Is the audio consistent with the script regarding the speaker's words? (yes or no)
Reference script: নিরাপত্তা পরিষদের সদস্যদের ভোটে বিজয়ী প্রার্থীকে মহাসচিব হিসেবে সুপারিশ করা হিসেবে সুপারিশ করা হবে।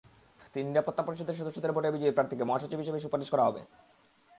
no